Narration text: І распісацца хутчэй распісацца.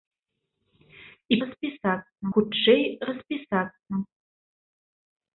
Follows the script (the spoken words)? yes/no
yes